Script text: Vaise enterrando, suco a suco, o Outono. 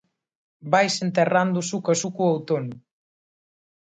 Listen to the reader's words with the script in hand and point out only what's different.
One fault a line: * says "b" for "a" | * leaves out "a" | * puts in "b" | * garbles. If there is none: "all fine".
all fine